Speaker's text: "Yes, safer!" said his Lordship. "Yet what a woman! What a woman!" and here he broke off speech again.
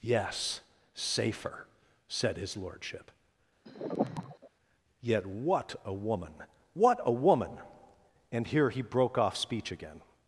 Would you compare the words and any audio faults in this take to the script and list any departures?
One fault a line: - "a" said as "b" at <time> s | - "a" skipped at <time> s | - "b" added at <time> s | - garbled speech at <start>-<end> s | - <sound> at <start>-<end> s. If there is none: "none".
- sigh at 3.7-4.5 s